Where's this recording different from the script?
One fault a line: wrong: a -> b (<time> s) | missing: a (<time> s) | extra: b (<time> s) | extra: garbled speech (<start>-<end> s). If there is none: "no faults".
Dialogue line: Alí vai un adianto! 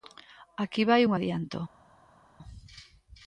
wrong: Alí -> Aquí (0.6 s)